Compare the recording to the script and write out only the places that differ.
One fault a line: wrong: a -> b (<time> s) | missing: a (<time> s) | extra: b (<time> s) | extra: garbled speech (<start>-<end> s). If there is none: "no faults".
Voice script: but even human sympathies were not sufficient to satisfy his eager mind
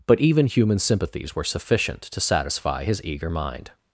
missing: not (1.4 s)